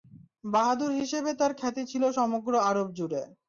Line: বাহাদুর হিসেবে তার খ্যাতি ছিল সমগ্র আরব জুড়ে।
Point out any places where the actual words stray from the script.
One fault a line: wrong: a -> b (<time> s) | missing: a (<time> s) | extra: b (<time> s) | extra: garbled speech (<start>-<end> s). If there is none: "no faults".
no faults